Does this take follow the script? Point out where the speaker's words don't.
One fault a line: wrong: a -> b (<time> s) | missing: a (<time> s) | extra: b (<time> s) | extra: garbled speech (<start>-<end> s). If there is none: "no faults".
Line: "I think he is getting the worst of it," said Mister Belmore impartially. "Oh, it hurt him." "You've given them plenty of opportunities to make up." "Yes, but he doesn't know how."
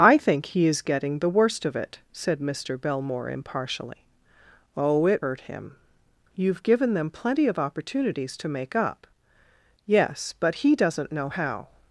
no faults